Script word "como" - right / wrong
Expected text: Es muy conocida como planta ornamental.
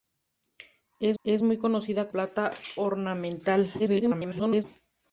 wrong